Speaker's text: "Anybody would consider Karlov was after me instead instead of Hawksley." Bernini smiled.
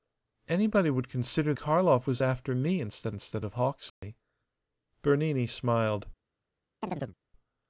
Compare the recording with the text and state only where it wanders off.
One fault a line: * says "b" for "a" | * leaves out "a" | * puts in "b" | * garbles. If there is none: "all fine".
all fine